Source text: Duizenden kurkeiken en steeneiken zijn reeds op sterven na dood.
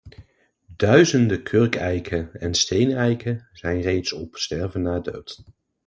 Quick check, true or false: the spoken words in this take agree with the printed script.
true